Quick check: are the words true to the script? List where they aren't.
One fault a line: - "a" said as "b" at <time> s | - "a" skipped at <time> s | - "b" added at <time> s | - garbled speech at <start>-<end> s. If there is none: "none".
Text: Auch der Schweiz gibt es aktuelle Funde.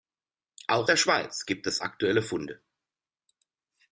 none